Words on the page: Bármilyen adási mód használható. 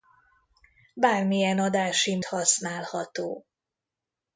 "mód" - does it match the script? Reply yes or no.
no